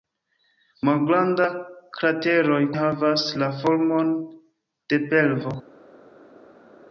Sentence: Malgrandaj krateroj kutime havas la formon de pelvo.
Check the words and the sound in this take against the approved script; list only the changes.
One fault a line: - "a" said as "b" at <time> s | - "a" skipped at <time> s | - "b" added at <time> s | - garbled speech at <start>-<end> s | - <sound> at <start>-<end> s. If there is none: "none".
- "kutime" skipped at 2.6 s